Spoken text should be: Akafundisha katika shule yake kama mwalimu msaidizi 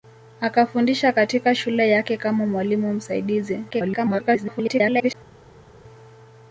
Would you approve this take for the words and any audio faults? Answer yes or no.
no